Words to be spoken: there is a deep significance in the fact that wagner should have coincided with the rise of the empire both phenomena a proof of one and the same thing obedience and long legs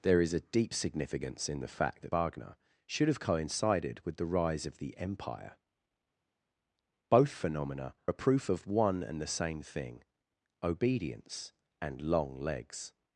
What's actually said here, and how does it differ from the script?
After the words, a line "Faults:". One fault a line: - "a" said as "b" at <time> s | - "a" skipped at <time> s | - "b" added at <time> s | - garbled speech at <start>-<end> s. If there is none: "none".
there is a deep significance in the fact that wagner should have coincided with the rise of the empire both phenomena a proof of one and the same thing obedience and long legs
Faults:
none